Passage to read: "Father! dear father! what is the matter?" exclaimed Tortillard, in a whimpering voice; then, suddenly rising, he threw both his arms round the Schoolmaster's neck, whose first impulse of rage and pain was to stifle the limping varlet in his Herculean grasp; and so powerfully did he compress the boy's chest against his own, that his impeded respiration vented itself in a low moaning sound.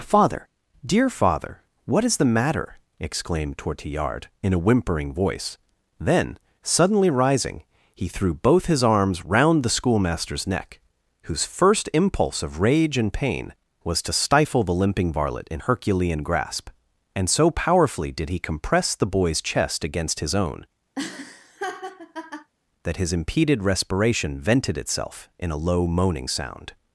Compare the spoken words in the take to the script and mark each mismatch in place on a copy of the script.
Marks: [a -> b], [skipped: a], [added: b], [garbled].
"Father! dear father! what is the matter?" exclaimed Tortillard, in a whimpering voice; then, suddenly rising, he threw both his arms round the Schoolmaster's neck, whose first impulse of rage and pain was to stifle the limping varlet in [skipped: his] Herculean grasp; and so powerfully did he compress the boy's chest against his own, that his impeded respiration vented itself in a low moaning sound.